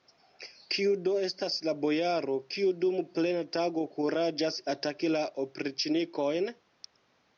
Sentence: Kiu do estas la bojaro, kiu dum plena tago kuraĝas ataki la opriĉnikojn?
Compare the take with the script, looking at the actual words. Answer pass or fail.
pass